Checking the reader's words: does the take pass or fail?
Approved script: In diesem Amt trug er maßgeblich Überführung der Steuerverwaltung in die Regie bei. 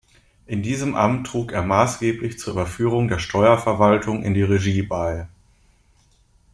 fail